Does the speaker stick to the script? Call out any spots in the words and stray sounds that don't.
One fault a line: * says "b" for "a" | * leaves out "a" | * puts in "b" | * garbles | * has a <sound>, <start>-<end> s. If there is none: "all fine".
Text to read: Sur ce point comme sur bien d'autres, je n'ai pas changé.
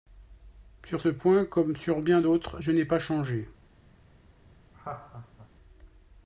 * has a laugh, 4.7-5.5 s